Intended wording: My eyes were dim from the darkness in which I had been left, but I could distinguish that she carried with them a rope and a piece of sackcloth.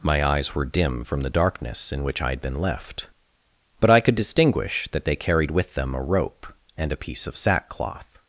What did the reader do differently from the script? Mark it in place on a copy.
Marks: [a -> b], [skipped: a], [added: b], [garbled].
My eyes were dim from the darkness in which I had been left, but I could distinguish that [she -> they] carried with them a rope and a piece of sackcloth.